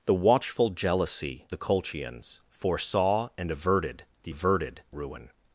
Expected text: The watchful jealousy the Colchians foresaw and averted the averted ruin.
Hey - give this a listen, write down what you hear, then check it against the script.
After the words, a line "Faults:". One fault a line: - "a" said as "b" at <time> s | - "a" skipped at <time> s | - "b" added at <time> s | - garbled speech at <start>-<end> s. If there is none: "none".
The watchful jealousy the Colchians foresaw and averted the averted ruin.
Faults:
none